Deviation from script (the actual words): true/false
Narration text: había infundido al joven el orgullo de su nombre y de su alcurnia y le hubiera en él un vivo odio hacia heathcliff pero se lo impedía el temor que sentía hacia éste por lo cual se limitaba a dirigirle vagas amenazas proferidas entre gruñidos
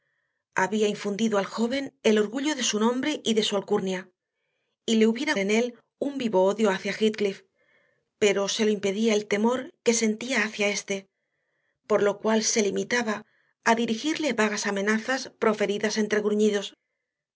false